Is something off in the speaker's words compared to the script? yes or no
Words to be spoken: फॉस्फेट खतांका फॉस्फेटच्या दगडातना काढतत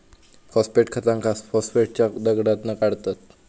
no